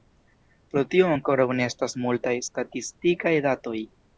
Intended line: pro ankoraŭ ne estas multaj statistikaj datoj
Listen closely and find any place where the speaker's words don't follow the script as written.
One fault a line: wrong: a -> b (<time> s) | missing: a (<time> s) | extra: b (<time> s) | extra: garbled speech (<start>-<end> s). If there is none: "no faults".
extra: tio (0.9 s)